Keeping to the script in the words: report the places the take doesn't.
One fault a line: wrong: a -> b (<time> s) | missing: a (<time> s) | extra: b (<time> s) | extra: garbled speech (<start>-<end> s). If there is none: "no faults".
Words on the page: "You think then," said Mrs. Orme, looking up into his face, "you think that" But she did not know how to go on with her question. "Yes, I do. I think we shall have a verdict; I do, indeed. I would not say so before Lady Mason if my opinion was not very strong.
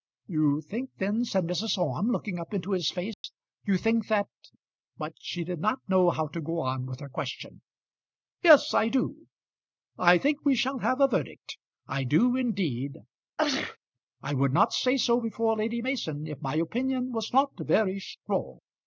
no faults